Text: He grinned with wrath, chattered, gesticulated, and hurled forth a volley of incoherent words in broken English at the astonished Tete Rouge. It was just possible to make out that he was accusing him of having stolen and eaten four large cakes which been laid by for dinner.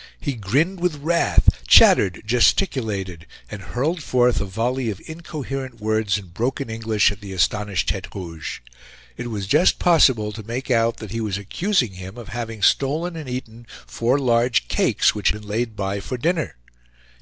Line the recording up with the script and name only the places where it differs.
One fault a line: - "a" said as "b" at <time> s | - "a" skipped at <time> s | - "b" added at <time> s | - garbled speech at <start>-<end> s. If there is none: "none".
none